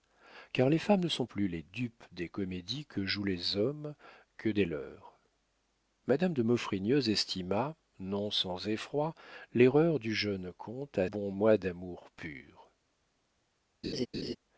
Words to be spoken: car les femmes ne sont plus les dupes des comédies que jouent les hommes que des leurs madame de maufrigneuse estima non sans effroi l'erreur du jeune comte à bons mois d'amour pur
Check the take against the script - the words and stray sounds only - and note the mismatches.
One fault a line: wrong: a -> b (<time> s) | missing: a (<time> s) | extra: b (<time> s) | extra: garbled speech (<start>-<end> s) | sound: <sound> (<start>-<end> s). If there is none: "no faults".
sound: laugh (13.8-14.4 s)